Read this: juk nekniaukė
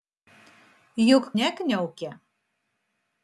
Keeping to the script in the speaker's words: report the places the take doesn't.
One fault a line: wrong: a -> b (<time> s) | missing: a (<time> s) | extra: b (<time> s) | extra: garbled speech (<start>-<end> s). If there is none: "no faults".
no faults